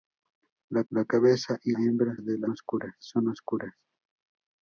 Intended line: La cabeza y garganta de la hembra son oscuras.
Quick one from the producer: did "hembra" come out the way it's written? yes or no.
no